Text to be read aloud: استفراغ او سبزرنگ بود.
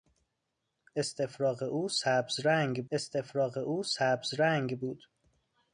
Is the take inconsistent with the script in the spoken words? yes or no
yes